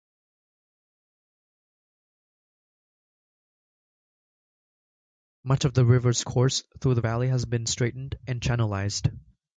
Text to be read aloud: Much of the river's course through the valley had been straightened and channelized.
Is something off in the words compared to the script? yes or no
yes